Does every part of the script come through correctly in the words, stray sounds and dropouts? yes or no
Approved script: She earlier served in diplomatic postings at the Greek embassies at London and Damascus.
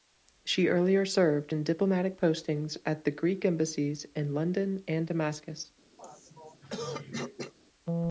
no